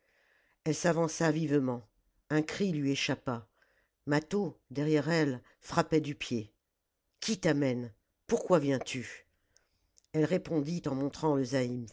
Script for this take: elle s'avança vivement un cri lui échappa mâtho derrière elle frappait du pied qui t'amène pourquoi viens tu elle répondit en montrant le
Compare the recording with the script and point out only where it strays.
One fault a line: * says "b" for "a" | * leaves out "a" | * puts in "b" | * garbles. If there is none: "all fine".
all fine